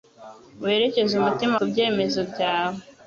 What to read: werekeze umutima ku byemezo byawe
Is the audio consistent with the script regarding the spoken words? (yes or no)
yes